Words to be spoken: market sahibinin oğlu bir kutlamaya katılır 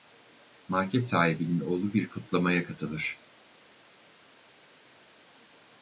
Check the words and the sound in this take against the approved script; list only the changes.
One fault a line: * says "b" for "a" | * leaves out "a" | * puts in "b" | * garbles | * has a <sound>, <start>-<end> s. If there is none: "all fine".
all fine